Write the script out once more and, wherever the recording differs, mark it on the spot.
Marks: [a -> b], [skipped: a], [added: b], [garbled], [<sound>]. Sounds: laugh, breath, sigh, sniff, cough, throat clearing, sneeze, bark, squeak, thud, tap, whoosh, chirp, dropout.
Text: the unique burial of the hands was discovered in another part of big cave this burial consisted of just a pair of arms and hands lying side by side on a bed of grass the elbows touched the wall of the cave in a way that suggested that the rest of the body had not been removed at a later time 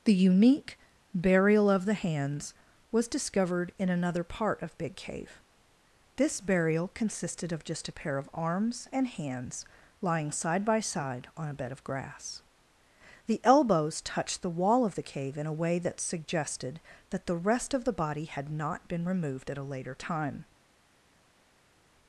the unique burial of the hands was discovered in another part of big cave this burial consisted of just a pair of arms and hands lying side by side on a bed of grass the elbows touched the wall of the cave in a way that suggested that the rest of the body had not been removed at a later time